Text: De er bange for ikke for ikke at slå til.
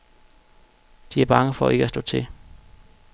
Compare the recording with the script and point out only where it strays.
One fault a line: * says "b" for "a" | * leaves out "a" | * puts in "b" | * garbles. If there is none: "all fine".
* leaves out "for ikke"